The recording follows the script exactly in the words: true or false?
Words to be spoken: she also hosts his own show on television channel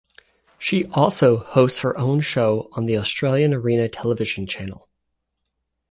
false